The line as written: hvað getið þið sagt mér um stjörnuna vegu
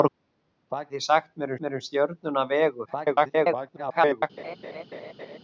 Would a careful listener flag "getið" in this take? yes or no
yes